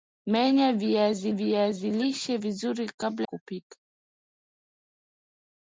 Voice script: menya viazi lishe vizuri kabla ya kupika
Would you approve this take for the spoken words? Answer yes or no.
no